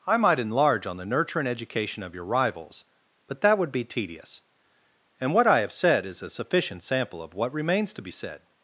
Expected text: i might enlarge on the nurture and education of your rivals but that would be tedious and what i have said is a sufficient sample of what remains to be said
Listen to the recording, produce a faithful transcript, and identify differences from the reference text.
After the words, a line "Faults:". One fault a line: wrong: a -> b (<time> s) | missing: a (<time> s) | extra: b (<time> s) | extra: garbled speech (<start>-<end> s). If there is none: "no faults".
i might enlarge on the nurture and education of your rivals but that would be tedious and what i have said is a sufficient sample of what remains to be said
Faults:
no faults